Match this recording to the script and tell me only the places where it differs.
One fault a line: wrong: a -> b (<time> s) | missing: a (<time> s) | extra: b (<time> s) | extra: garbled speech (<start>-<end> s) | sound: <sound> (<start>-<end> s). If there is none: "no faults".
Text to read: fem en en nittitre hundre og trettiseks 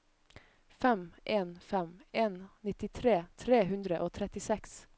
extra: fem (1.6 s)
extra: tre (3.5 s)